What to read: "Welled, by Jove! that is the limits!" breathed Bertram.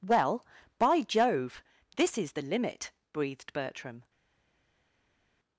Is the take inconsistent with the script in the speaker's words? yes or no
yes